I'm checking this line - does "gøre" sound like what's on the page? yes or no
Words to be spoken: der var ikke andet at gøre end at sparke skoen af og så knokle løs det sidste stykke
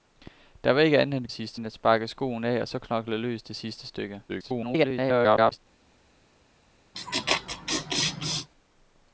no